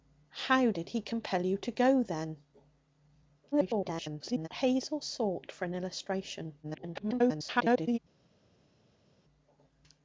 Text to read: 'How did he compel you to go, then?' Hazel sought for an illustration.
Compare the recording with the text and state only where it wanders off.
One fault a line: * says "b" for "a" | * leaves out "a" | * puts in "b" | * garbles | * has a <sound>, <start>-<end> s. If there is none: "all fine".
* garbles
* garbles